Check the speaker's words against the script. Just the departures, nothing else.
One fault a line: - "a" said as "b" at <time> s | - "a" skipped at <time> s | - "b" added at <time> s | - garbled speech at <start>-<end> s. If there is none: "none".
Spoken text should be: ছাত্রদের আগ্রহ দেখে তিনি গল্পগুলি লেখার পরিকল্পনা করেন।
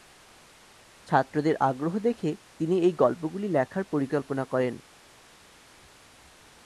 - "এই" added at 2.8 s